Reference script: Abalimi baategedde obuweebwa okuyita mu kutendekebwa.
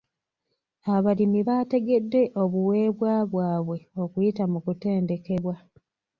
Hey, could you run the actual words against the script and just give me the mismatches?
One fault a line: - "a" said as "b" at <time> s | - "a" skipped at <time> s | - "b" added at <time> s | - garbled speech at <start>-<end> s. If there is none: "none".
- "bwabwe" added at 3.3 s